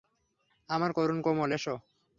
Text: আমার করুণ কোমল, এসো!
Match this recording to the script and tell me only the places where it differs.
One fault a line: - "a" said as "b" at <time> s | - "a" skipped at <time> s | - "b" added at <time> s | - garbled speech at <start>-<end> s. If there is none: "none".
none